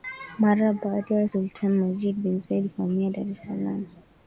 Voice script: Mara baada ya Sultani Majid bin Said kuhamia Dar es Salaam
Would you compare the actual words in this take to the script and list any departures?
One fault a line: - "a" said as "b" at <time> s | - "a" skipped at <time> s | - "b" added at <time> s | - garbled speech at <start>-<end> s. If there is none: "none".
none